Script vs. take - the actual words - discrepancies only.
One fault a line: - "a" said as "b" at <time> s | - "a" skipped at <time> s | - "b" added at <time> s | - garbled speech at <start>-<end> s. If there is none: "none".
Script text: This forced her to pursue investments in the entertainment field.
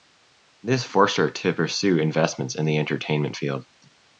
none